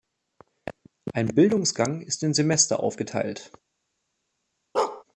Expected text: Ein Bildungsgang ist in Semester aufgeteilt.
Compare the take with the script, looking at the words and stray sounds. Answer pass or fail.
fail